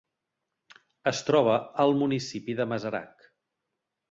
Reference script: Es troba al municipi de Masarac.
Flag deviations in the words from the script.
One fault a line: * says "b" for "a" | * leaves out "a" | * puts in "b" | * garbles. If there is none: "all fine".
all fine